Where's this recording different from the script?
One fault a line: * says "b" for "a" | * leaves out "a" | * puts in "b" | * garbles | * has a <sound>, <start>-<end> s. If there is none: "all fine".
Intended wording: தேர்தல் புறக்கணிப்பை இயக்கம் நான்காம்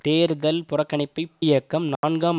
* has a dropout, 2.0-2.0 s